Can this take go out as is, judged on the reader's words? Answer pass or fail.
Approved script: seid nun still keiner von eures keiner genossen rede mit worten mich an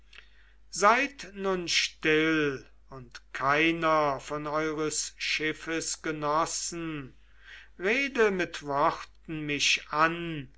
fail